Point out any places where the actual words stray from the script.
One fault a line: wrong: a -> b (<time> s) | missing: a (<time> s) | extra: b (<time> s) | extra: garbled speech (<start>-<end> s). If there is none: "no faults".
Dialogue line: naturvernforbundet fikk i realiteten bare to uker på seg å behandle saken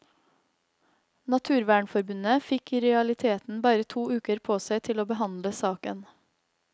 extra: til (4.9 s)